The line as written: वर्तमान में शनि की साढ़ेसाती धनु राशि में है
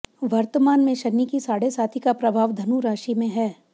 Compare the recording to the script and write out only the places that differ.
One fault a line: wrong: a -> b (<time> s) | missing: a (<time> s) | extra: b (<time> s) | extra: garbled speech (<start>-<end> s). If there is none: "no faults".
extra: का प्रभाव (2.0 s)